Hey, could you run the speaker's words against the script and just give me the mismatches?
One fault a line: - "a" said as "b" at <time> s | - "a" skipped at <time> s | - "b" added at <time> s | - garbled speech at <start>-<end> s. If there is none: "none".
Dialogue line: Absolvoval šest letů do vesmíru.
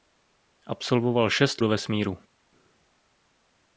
- "letů" skipped at 1.6 s